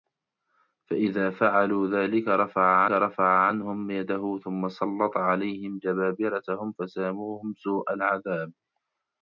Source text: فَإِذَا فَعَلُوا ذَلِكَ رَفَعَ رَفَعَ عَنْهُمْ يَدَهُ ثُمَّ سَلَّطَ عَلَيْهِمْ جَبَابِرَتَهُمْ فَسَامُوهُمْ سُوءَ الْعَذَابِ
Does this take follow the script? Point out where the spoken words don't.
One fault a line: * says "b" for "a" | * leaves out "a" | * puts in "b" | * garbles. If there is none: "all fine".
all fine